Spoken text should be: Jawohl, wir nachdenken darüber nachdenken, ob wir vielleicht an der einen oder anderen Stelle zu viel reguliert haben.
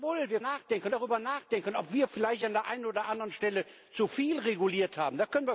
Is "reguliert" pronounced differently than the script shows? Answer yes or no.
no